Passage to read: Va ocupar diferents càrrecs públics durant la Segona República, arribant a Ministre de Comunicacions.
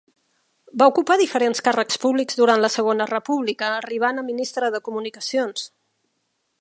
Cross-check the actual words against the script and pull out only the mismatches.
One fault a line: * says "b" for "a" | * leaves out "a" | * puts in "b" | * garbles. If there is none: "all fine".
all fine